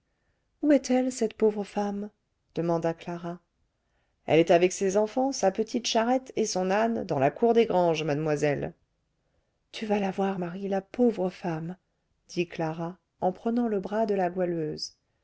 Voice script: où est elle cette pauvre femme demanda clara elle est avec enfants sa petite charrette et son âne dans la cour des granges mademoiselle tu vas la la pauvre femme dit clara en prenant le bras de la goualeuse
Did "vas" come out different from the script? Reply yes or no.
no